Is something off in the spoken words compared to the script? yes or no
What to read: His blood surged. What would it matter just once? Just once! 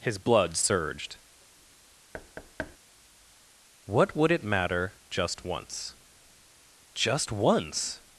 no